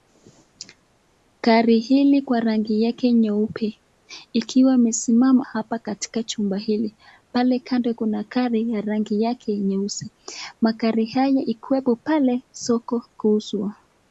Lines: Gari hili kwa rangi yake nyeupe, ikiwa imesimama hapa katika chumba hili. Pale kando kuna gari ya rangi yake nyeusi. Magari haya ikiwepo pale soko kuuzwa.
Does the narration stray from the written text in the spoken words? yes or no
no